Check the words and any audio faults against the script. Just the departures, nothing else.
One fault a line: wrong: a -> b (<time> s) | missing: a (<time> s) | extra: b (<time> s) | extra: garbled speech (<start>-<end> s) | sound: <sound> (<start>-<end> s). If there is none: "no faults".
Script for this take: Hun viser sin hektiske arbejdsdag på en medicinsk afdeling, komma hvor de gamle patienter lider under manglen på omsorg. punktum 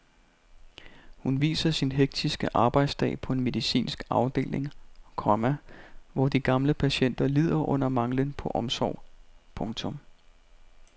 no faults